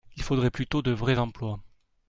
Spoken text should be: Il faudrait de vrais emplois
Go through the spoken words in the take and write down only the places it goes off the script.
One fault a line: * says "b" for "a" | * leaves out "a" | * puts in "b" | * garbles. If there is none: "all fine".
* puts in "plutôt"